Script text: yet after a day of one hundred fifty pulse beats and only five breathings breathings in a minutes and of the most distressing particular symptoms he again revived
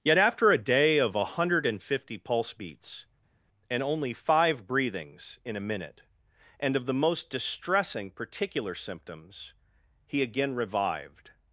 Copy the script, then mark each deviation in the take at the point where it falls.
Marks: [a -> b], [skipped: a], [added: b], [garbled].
yet after a day of one hundred fifty pulse beats and only five breathings [skipped: breathings] in a [minutes -> minute] and of the most distressing particular symptoms he again revived